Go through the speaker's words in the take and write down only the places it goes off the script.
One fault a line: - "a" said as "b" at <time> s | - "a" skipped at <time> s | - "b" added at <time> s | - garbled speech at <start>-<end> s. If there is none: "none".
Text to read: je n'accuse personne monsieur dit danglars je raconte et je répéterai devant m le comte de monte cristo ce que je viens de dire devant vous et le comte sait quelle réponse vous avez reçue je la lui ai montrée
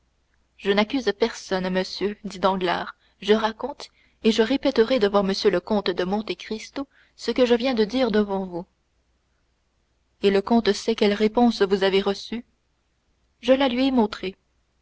none